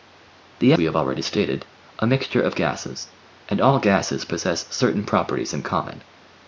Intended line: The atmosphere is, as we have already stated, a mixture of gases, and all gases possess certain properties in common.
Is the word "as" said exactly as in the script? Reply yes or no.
no